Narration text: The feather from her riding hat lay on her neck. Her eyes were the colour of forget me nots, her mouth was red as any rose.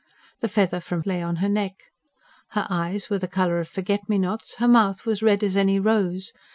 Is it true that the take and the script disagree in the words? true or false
true